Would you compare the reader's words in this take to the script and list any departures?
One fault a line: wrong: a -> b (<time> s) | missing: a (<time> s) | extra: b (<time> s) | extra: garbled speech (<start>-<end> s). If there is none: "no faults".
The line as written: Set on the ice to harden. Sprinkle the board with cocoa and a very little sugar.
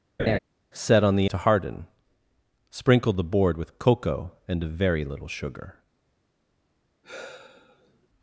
missing: ice (1.3 s)